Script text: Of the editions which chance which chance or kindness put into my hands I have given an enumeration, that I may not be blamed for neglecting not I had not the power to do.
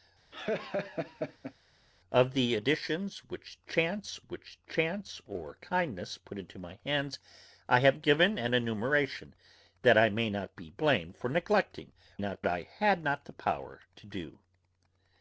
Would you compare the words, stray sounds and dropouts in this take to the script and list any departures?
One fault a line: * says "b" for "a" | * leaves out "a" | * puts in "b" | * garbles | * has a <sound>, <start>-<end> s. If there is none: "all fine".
* has a laugh, 0.3-1.5 s